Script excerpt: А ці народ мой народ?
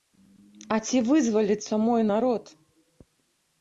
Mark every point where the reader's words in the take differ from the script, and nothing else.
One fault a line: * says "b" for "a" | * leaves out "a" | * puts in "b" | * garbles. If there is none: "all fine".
* says "вызваліцца" for "народ"